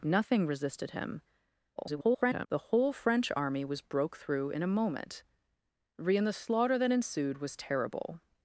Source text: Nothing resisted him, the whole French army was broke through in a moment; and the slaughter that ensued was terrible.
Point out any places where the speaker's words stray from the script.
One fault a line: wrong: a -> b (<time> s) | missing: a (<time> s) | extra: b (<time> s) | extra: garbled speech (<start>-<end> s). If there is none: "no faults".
extra: garbled speech (1.8-2.5 s)